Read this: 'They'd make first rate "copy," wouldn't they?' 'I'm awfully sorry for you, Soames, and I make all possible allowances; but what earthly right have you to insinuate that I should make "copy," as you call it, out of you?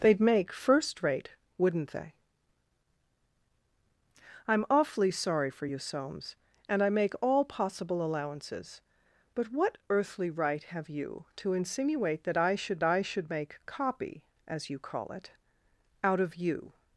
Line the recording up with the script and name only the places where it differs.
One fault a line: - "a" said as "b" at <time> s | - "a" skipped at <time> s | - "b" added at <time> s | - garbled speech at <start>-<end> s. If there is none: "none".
- "copy" skipped at 1.3 s
- "I should" added at 12.8 s